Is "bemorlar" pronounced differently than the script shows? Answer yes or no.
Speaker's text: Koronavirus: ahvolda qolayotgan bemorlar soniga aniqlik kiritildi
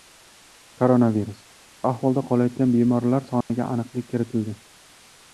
no